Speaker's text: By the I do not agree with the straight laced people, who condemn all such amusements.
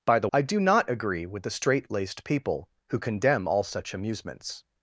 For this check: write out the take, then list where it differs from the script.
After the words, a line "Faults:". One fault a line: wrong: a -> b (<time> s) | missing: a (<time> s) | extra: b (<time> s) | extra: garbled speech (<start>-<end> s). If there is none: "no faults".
By the I do not agree with the straight laced people, who condemn all such amusements.
Faults:
no faults